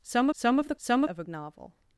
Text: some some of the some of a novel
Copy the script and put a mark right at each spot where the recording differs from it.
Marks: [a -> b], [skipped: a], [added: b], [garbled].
some some of the some of a novel